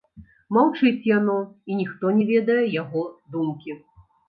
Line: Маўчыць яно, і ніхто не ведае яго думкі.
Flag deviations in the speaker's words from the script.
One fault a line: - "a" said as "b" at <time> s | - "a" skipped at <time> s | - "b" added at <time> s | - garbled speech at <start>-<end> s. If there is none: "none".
none